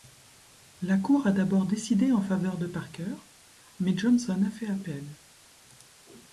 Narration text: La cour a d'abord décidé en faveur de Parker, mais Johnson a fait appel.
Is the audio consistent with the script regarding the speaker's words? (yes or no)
yes